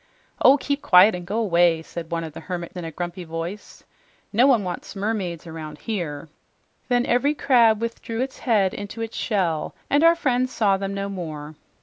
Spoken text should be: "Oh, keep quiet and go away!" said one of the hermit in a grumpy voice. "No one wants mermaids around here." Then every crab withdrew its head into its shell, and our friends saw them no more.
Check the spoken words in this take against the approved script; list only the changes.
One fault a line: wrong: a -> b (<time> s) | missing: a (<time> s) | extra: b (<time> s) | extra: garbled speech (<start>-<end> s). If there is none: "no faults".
no faults